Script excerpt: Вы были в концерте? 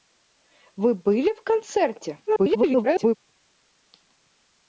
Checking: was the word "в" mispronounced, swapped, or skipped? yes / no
no